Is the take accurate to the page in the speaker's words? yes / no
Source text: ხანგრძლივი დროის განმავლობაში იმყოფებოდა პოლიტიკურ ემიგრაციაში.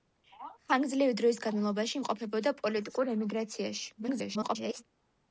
no